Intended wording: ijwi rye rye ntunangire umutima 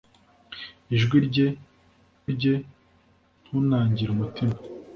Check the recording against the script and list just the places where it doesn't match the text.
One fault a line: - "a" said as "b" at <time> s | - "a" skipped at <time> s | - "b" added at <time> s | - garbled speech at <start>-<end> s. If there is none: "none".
none